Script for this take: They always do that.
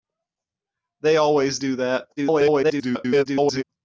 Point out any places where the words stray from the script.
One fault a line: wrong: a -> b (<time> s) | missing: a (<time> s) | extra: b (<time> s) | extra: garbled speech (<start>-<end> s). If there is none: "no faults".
extra: garbled speech (2.2-3.6 s)